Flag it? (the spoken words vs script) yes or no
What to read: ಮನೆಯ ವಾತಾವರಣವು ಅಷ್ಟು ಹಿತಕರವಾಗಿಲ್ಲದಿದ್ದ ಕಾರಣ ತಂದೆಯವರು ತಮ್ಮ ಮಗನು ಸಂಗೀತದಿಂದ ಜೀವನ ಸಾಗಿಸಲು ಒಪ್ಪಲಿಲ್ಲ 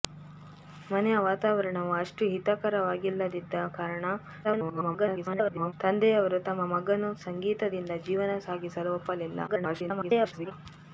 yes